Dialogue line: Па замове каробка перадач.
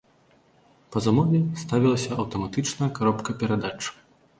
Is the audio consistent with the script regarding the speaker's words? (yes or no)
no